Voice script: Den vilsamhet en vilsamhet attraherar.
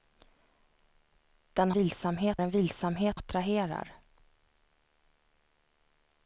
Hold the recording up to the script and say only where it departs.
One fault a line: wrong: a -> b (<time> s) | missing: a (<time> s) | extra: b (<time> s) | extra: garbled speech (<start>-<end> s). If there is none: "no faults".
no faults